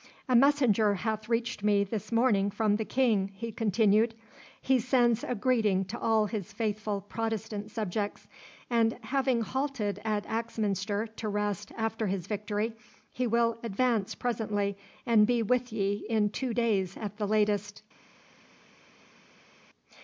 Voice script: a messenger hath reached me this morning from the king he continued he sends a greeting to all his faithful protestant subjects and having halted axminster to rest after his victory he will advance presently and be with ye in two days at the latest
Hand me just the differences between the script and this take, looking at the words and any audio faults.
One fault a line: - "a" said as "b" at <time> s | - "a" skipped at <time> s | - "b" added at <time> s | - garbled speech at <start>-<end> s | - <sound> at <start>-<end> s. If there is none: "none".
- "at" added at 10.0 s